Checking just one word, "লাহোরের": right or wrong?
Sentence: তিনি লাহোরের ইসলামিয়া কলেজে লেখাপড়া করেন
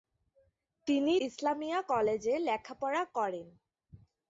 wrong